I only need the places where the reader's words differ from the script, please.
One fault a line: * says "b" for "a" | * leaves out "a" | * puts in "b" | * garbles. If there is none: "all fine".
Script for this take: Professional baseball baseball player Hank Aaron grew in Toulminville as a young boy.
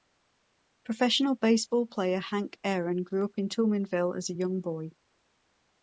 * leaves out "baseball"
* puts in "up"